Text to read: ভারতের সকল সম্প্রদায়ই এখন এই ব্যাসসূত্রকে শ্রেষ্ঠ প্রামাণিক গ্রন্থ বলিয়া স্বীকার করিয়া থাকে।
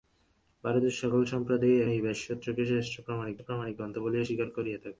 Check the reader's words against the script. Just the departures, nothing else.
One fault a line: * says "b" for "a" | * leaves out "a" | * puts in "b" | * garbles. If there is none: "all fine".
* leaves out "এখন"
* puts in "প্রামাণিক"